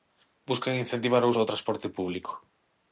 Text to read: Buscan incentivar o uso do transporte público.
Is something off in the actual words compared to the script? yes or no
yes